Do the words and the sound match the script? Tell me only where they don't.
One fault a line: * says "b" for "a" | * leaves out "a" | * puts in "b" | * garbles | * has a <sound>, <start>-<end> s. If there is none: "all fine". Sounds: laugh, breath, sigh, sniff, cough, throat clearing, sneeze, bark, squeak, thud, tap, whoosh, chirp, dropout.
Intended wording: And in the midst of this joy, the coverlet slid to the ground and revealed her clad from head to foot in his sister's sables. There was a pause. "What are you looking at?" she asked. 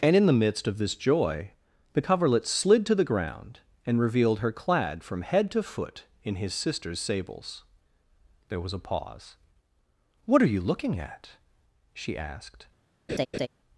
* has a laugh, 13.1-13.5 s